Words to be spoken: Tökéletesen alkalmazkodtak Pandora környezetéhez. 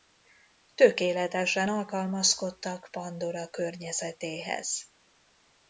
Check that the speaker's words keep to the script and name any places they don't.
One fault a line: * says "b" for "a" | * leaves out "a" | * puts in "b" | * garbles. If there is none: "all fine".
all fine